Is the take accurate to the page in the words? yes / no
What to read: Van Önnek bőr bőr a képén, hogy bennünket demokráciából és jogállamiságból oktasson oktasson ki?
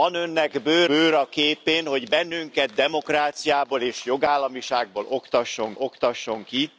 yes